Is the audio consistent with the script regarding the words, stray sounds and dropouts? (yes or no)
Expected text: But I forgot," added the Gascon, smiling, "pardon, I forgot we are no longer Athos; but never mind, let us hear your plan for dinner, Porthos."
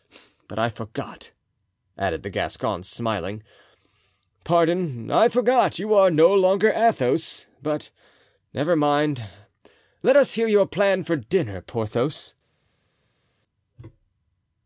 no